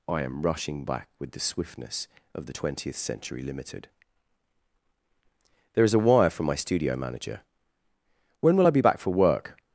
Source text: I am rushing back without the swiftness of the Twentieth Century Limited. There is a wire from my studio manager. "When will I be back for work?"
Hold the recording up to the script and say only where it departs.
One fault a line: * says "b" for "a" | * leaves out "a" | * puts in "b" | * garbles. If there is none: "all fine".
* says "with" for "without"